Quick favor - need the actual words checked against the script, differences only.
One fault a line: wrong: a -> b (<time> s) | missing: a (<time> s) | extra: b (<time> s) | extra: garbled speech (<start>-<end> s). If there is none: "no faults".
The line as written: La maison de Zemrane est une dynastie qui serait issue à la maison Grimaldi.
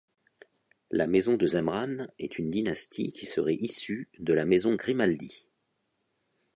wrong: à -> de (4.2 s)